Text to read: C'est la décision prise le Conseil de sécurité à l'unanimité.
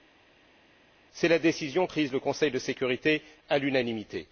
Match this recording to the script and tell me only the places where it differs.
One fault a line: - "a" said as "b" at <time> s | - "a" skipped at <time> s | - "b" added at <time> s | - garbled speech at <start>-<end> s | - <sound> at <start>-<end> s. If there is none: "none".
none